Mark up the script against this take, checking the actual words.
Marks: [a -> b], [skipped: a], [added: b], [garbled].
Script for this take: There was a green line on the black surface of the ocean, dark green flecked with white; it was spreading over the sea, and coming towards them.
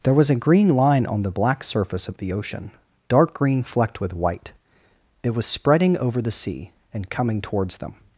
There was a green line on the black surface of the ocean, dark green flecked with white; it was spreading over the sea, and coming towards them.